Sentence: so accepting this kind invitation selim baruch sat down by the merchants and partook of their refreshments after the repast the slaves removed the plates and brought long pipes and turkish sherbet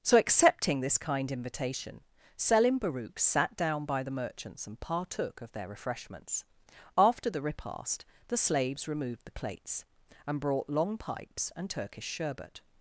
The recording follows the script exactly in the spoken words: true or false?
true